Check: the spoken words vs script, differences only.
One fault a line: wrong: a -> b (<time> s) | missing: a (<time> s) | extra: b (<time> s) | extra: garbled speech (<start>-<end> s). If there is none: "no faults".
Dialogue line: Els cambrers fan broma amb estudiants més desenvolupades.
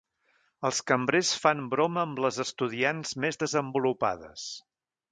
extra: les (2.3 s)